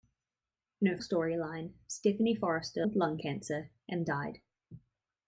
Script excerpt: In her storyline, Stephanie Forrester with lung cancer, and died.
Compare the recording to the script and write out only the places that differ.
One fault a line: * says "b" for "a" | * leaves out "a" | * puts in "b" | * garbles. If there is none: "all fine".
all fine